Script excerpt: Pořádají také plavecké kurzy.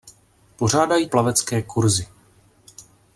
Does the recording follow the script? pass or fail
fail